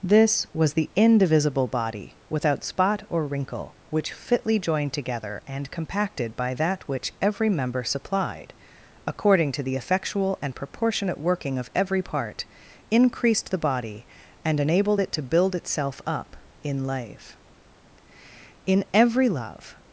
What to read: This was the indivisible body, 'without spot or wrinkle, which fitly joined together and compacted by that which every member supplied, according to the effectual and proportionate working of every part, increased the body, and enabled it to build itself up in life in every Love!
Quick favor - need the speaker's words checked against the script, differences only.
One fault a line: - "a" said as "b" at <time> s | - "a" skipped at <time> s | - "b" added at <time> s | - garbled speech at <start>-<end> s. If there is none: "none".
none